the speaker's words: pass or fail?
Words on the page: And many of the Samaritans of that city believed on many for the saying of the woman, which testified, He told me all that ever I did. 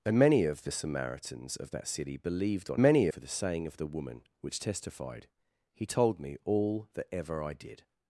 pass